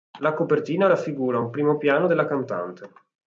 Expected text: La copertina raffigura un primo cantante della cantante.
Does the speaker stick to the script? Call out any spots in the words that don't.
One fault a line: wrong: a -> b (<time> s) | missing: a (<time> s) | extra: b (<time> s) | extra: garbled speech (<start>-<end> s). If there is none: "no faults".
wrong: cantante -> piano (1.8 s)